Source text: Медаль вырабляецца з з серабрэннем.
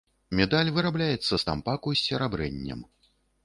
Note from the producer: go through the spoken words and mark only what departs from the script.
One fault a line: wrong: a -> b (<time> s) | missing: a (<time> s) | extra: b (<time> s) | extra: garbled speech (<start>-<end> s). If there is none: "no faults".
extra: тампаку (1.5 s)